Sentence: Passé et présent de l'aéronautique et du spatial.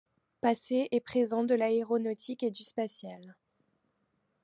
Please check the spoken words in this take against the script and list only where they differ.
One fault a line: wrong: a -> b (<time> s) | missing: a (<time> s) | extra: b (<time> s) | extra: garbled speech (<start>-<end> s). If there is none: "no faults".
no faults